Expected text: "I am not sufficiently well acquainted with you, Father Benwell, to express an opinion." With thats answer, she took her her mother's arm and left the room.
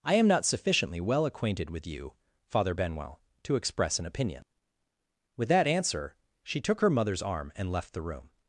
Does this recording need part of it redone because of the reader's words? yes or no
yes